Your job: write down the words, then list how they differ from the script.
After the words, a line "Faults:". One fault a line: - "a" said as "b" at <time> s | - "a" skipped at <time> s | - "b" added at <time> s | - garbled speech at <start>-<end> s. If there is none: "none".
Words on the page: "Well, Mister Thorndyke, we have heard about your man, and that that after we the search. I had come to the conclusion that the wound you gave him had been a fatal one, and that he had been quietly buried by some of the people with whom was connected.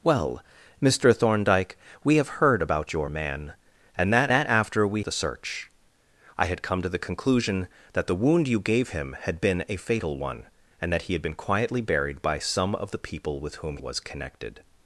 "Well, Mister Thorndyke, we have heard about your man, and that that after we the search. I had come to the conclusion that the wound you gave him had been a fatal one, and that he had been quietly buried by some of the people with whom was connected.
Faults:
none